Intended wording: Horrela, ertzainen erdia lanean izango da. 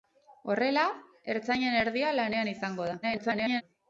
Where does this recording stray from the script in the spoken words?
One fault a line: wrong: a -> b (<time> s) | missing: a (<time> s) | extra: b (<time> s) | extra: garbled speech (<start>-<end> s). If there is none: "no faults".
extra: garbled speech (3.0-3.6 s)